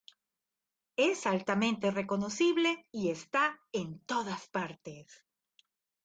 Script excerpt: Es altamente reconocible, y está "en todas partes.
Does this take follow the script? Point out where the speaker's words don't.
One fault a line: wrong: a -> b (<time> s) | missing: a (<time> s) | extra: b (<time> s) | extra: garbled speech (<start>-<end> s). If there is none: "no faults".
no faults